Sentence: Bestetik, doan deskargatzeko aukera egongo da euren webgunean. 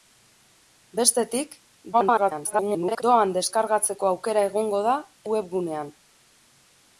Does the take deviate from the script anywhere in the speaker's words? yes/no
yes